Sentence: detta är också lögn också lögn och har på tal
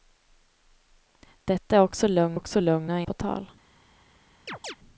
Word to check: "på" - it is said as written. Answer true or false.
true